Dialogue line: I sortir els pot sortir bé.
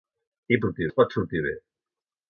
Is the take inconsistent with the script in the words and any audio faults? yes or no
no